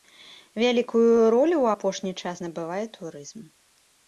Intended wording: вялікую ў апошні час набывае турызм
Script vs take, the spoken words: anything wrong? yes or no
yes